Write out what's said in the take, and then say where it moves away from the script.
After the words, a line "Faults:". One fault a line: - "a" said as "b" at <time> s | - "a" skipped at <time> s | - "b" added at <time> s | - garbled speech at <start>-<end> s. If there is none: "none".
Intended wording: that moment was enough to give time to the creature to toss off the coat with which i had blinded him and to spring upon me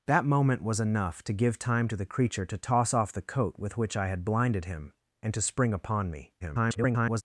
that moment was enough to give time to the creature to toss off the coat with which i had blinded him and to spring upon me [garbled]
Faults:
- garbled speech at 6.4-7.2 s